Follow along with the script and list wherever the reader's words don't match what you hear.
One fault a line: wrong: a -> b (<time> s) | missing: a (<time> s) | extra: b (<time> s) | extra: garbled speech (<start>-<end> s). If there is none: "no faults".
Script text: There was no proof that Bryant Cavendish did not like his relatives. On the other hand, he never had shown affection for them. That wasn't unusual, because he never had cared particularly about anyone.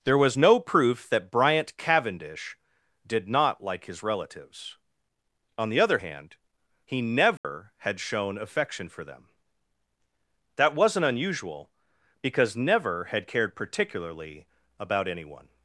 missing: he (12.6 s)